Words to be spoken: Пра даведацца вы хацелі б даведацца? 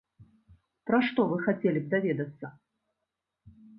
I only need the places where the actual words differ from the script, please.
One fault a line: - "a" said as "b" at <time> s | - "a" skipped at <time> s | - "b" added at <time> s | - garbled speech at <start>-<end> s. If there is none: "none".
- "даведацца" said as "што" at 1.1 s